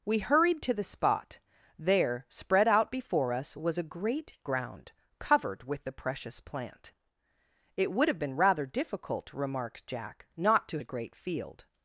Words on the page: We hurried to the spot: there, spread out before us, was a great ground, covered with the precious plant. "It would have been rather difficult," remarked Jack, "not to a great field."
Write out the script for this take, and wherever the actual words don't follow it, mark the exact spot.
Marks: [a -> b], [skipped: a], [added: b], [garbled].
We hurried to the spot: there, spread out before us, was a great ground, covered with the precious plant. "It would have been rather difficult," remarked Jack, "not to a great field."